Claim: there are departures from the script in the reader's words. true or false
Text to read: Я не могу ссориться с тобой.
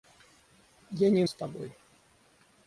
true